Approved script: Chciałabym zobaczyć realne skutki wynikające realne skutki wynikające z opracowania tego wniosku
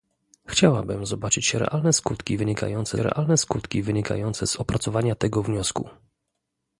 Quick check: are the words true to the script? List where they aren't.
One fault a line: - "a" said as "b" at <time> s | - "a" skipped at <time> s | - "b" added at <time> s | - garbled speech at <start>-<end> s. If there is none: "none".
none